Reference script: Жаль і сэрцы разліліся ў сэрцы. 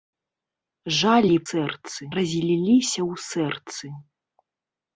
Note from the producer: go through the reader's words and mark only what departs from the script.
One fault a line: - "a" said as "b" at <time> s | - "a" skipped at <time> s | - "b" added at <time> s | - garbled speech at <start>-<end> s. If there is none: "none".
none